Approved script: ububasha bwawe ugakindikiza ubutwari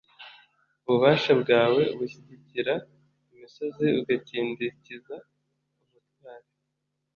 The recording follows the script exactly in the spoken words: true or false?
false